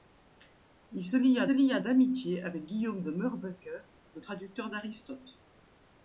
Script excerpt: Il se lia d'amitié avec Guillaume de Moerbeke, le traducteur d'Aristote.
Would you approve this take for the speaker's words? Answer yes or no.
no